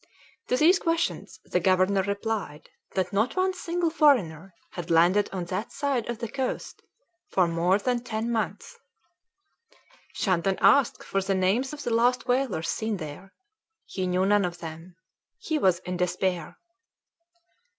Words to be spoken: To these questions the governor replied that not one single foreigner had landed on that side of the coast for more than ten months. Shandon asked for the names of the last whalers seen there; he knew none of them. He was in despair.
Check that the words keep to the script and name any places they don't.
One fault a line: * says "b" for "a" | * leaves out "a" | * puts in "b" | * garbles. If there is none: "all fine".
all fine